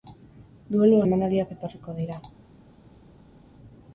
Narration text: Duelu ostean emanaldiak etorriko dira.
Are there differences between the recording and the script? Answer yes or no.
yes